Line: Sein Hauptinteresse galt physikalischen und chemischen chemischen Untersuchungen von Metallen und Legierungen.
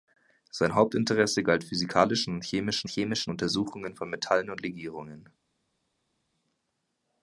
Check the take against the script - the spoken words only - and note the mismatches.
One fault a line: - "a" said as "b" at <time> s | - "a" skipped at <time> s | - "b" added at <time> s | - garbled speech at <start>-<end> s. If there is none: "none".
none